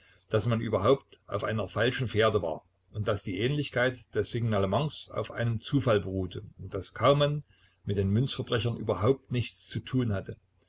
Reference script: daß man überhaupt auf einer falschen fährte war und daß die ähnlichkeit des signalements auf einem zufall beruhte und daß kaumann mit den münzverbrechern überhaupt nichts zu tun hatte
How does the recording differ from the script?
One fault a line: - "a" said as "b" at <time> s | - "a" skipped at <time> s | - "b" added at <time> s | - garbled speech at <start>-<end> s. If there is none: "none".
none